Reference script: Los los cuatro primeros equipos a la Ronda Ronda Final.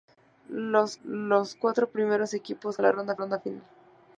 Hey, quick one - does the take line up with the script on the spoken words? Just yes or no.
yes